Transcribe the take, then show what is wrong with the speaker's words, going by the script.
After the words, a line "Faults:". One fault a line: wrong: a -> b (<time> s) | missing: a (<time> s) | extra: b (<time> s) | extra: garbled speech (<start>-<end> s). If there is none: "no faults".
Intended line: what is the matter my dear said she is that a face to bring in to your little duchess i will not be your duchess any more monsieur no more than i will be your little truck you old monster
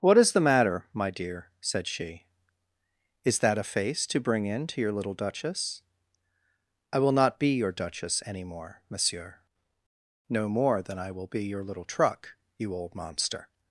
what is the matter my dear said she is that a face to bring in to your little duchess i will not be your duchess any more monsieur no more than i will be your little truck you old monster
Faults:
no faults